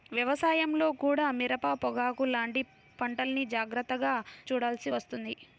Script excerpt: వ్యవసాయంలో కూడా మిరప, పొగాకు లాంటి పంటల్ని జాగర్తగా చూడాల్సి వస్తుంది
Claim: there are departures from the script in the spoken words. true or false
false